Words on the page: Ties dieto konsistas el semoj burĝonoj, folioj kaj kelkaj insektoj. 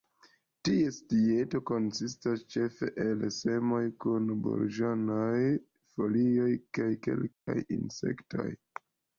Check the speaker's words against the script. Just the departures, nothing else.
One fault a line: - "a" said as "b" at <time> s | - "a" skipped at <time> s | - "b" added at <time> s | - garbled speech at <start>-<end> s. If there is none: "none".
- "ĉefe" added at 2.5 s
- "kun" added at 4.0 s